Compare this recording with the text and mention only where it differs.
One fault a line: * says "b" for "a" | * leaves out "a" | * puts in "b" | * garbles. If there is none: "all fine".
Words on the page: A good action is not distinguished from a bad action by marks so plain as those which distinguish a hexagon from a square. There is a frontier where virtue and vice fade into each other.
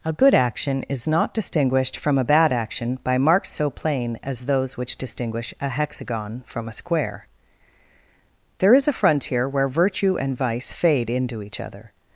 all fine